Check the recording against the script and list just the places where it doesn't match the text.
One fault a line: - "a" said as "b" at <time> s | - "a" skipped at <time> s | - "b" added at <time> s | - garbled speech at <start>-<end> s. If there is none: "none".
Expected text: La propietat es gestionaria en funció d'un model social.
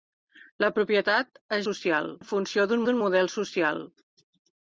- "gestionaria" said as "social" at 1.7 s
- "d'un" added at 2.9 s